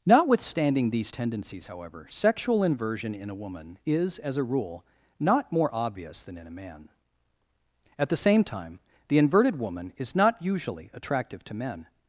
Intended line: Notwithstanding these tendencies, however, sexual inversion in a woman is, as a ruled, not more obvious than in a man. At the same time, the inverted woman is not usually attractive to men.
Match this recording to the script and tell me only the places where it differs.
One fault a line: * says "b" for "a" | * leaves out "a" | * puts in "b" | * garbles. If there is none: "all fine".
* says "rule" for "ruled"